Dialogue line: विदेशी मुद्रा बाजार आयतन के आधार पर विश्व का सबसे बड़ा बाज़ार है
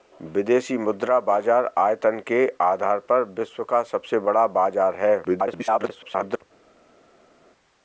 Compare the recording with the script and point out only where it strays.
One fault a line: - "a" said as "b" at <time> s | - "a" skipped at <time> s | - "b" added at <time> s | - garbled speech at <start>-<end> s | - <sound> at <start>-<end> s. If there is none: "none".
- garbled speech at 5.2-6.4 s